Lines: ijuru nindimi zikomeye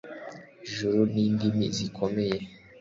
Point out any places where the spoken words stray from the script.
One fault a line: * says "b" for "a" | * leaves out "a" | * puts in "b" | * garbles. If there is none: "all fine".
all fine